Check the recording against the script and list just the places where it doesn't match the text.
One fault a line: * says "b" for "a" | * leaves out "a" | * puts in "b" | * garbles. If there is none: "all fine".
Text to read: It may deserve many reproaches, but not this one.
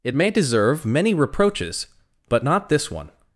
all fine